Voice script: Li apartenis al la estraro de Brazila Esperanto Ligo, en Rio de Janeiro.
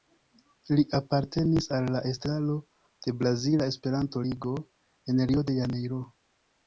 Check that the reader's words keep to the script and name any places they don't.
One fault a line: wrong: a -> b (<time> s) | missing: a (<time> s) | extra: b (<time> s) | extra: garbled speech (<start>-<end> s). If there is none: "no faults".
no faults